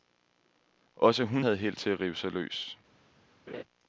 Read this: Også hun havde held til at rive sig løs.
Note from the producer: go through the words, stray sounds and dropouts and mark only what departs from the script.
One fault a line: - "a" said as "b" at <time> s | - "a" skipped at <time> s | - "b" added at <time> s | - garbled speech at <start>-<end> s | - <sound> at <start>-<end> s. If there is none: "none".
- laugh at 3.5-3.6 s